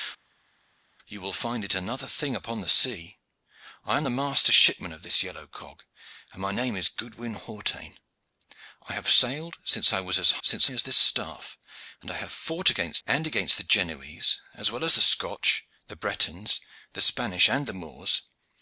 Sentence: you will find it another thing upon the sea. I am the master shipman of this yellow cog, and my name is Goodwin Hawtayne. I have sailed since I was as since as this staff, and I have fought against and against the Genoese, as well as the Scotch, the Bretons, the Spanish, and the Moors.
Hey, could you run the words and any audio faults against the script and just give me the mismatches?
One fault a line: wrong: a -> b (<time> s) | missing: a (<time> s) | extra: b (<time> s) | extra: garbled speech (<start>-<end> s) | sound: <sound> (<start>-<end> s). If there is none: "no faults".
no faults